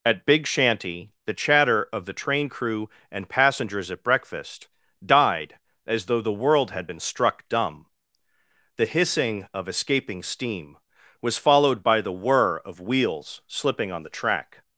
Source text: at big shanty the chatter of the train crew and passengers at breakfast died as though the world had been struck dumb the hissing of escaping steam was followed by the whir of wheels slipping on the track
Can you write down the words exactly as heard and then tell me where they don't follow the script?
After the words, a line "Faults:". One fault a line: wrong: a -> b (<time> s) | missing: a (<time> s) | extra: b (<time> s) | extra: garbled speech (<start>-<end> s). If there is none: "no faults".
at big shanty the chatter of the train crew and passengers at breakfast died as though the world had been struck dumb the hissing of escaping steam was followed by the whir of wheels slipping on the track
Faults:
no faults